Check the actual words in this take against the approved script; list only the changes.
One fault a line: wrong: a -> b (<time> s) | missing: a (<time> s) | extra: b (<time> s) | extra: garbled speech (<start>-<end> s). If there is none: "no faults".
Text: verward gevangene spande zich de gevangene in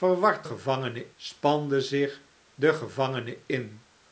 no faults